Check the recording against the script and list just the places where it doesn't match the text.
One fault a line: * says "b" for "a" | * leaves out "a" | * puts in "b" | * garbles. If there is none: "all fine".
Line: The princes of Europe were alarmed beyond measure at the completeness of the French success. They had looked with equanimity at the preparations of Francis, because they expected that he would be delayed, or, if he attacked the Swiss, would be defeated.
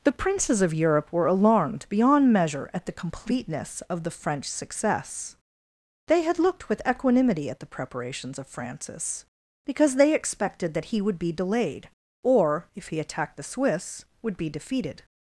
all fine